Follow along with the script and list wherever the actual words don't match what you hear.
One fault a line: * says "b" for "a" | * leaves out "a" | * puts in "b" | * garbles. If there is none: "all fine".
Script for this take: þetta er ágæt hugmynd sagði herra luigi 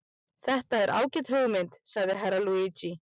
all fine